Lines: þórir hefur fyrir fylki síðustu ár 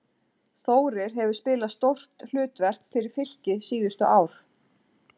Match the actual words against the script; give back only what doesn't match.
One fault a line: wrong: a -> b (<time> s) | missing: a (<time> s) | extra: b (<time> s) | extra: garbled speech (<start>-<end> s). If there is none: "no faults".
extra: spilað stórt hlutverk (1.4 s)